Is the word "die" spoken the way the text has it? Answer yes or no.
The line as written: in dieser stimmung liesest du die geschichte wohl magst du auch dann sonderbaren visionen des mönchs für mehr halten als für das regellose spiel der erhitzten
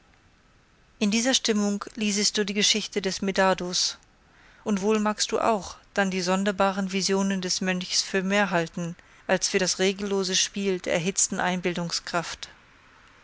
yes